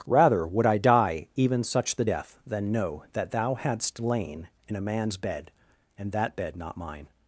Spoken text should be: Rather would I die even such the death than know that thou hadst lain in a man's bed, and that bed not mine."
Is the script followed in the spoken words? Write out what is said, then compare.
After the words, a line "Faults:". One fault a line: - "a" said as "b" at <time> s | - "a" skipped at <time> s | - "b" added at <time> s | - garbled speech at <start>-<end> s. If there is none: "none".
Rather would I die even such the death than know that thou hadst lain in a man's bed, and that bed not mine."
Faults:
none